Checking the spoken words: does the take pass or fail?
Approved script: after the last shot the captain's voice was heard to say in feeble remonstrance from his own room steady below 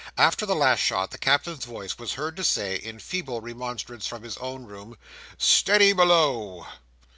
pass